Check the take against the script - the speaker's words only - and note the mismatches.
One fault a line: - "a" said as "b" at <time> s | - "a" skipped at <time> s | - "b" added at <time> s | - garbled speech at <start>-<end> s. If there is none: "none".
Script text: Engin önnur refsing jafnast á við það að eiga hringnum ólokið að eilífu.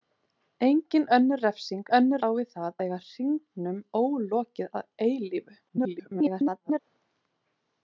- "jafnast" said as "önnur" at 2.0 s
- "að" skipped at 2.8 s
- garbled speech at 5.7-6.8 s